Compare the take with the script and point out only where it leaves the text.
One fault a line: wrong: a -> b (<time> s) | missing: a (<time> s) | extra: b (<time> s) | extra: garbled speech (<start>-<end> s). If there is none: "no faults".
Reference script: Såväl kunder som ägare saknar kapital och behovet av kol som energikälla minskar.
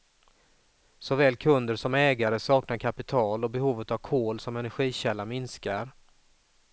no faults